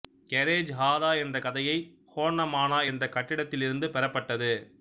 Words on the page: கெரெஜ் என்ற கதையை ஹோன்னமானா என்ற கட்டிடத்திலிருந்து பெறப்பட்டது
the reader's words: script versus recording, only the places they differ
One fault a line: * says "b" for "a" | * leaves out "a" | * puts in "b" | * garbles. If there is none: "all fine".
* puts in "ஹாரா"